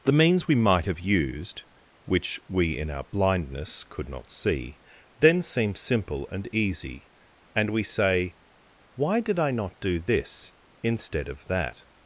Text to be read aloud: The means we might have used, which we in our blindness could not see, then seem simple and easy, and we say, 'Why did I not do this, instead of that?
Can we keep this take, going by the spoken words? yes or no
yes